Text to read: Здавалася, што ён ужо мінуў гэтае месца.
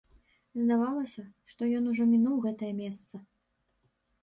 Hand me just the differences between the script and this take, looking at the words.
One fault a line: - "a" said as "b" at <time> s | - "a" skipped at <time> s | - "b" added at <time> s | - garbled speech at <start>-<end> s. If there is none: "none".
none